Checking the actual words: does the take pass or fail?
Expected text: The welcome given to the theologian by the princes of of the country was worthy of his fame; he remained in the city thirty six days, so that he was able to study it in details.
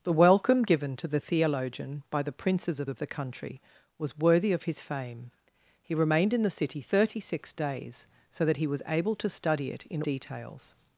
pass